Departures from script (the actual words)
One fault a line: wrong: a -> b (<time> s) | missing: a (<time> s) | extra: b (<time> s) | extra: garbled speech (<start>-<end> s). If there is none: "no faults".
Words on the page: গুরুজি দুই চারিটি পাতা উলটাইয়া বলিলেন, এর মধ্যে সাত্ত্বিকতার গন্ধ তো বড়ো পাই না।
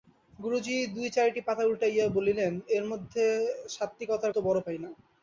missing: গন্ধ (4.3 s)